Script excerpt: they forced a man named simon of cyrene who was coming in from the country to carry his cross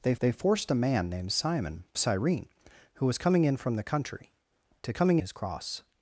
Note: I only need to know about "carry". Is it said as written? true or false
false